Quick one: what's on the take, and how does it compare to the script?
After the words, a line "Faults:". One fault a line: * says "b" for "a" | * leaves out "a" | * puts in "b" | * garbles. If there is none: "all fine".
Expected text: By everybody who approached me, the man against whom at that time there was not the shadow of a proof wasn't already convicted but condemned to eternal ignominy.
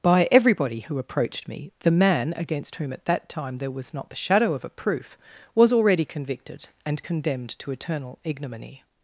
By everybody who approached me, the man against whom at that time there was not the shadow of a proof was already convicted and condemned to eternal ignominy.
Faults:
* says "was" for "wasn't"
* says "and" for "but"